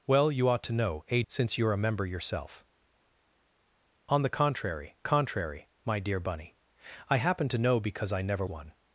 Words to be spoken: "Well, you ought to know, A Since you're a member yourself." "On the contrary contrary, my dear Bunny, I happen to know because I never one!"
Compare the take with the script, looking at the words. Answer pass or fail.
pass